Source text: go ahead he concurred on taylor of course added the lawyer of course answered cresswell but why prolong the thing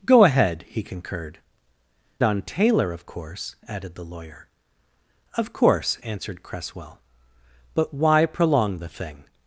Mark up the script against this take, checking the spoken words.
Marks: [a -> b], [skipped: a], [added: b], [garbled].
go ahead he concurred on taylor of course added the lawyer of course answered cresswell but why prolong the thing